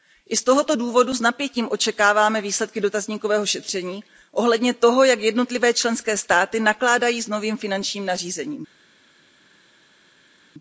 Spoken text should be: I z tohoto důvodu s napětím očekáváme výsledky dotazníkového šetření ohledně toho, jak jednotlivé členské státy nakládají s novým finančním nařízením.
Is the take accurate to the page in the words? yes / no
yes